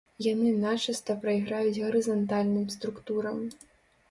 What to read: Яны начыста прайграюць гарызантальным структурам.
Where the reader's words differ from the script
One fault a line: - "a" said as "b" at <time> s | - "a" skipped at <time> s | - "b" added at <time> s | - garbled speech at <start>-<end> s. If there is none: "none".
none